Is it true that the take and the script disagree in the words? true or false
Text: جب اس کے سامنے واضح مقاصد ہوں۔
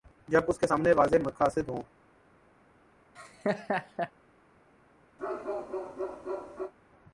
false